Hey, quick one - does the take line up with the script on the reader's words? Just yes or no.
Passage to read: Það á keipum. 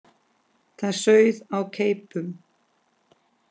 no